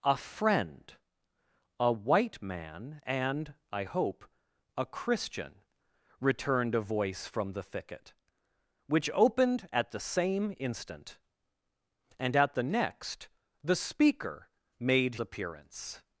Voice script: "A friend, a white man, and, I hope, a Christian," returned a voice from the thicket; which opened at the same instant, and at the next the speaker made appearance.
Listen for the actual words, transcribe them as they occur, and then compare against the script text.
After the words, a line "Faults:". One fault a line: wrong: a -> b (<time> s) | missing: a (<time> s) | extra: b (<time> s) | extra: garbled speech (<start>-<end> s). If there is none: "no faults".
"A friend, a white man, and, I hope, a Christian," returned a voice from the thicket; which opened at the same instant, and at the next the speaker made appearance.
Faults:
no faults